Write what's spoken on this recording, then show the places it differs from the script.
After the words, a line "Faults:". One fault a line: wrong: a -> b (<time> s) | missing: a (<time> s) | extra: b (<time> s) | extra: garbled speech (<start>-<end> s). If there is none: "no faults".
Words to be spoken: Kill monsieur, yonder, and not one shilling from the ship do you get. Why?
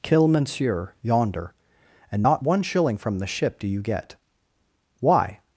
Kill monsieur, yonder, and not one shilling from the ship do you get. Why?
Faults:
no faults